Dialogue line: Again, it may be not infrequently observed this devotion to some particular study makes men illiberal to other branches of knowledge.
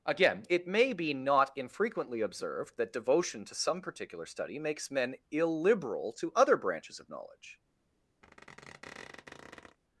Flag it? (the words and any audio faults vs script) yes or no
yes